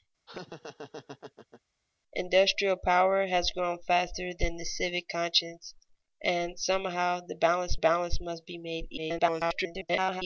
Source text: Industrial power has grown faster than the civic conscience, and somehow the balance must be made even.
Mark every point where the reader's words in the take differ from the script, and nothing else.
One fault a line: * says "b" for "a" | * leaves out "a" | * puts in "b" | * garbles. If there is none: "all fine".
* puts in "balance"
* garbles